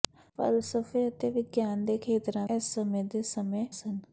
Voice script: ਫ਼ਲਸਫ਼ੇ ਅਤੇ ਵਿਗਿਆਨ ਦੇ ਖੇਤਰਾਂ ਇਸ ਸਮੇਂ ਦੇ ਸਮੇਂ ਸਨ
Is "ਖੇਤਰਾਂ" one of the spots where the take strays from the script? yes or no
no